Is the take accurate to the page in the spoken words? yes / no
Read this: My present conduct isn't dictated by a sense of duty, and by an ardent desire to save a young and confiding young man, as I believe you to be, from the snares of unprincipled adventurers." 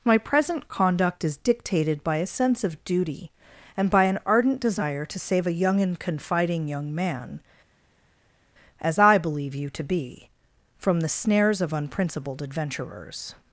no